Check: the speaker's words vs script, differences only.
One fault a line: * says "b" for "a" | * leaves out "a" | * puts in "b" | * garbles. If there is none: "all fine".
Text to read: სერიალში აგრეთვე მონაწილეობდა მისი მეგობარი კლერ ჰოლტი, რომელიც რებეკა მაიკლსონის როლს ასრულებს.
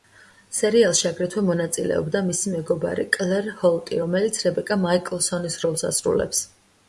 all fine